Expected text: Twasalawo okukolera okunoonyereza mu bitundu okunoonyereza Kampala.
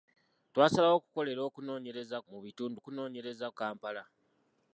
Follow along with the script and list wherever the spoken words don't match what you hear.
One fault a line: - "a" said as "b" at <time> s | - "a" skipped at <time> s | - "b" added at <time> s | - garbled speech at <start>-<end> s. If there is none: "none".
none